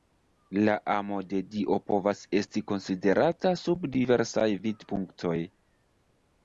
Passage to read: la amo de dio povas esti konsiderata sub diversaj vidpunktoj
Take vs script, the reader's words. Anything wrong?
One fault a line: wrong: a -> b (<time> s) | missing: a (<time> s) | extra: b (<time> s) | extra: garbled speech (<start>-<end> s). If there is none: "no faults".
no faults